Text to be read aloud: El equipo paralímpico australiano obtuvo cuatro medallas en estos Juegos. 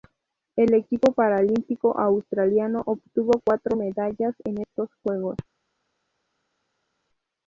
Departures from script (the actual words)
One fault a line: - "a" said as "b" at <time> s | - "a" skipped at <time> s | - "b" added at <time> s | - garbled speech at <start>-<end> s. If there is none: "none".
none